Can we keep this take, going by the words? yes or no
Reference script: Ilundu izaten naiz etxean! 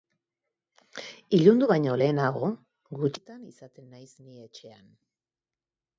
no